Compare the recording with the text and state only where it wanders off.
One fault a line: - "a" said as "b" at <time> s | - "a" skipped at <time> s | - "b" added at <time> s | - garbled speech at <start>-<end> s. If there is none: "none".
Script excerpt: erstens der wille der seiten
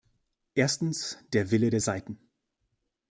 none